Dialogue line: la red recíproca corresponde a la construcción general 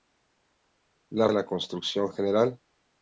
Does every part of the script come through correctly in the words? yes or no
no